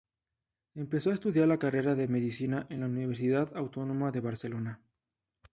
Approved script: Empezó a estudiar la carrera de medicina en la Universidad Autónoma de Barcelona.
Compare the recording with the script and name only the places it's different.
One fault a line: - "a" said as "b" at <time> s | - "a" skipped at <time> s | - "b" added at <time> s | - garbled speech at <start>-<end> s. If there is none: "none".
none